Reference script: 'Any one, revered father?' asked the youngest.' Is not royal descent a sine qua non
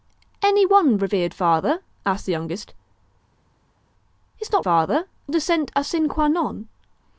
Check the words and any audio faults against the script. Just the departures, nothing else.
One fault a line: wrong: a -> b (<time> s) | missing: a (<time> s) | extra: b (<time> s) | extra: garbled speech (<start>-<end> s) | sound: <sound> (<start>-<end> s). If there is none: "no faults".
wrong: royal -> father (4.6 s)